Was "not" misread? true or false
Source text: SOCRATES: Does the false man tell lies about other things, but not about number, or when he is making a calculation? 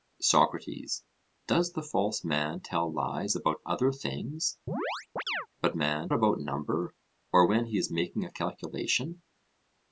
true